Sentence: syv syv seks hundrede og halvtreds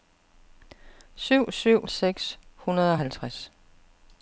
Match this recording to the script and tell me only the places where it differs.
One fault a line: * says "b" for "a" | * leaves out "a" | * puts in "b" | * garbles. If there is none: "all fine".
all fine